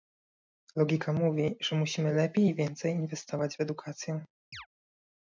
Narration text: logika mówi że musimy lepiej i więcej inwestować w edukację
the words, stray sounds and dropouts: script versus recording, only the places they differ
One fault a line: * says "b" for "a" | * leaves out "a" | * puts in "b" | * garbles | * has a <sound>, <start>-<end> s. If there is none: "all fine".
* has a chirp, 4.5-4.7 s